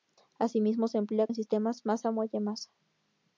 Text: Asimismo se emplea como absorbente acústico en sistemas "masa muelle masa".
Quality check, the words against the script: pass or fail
fail